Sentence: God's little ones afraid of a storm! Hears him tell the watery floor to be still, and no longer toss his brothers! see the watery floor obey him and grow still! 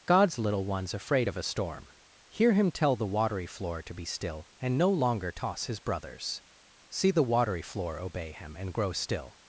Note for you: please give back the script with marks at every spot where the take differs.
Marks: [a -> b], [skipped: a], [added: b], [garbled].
God's little ones afraid of a storm! [Hears -> Hear] him tell the watery floor to be still, and no longer toss his brothers! see the watery floor obey him and grow still!